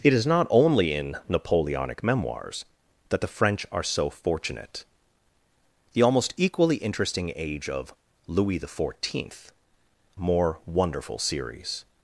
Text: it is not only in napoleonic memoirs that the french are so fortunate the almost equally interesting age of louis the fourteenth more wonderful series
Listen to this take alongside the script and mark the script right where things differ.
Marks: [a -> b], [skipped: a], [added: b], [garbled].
it is not only in napoleonic memoirs that the french are so fortunate the almost equally interesting age of louis the fourteenth more wonderful series